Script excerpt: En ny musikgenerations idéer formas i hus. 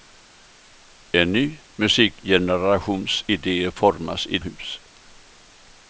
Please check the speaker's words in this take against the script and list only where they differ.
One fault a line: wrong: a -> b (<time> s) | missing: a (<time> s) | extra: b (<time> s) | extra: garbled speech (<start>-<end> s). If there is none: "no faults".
no faults